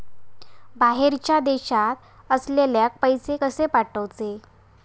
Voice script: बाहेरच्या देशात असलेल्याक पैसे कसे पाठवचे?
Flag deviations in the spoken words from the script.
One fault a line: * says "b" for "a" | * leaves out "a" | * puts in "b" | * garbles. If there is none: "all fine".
all fine